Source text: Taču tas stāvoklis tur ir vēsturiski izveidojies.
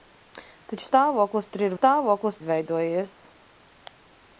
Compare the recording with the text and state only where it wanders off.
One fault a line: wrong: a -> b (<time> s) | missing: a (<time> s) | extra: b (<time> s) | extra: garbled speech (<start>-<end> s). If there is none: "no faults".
missing: tas (0.9 s)
wrong: vēsturiski -> stāvoklis (1.8 s)